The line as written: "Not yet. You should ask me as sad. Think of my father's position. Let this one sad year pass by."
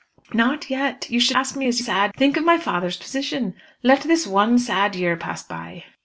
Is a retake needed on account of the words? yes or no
no